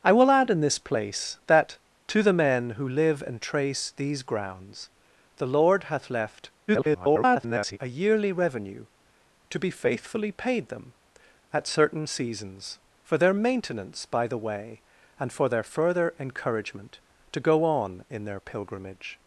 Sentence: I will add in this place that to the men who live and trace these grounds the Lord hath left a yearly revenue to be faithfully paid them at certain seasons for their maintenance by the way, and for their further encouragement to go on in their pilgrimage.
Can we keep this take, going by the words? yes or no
no